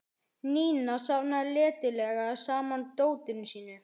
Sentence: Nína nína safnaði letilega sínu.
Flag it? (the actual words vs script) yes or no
yes